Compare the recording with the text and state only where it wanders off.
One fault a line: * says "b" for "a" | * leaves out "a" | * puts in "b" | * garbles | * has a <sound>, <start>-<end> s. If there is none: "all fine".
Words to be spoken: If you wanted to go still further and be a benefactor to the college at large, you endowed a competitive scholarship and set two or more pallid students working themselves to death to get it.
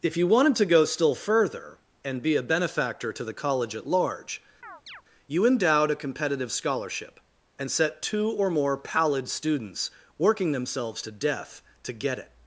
* has a chirp, 4.6-5.0 s